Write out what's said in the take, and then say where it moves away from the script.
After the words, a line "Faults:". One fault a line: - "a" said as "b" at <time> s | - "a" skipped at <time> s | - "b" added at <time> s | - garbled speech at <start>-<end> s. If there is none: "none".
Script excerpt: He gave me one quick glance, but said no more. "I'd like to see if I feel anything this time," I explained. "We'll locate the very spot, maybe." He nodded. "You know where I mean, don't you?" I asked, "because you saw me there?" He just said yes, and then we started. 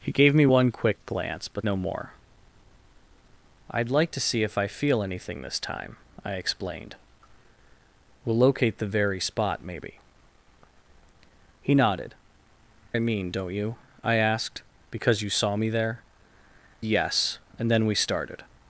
He gave me one quick glance, but no more. "I'd like to see if I feel anything this time," I explained. "We'll locate the very spot, maybe." He nodded. "I mean, don't you?" I asked, "because you saw me there?" Yes, and then we started.
Faults:
- "said" skipped at 1.7 s
- "You know where" skipped at 12.1 s
- "He just said" skipped at 16.0 s